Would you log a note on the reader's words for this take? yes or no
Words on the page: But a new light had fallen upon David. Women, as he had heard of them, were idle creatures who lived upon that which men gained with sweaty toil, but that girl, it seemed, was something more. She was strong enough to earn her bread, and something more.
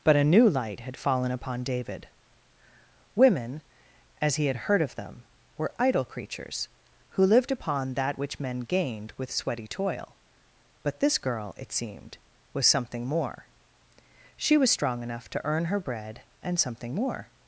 yes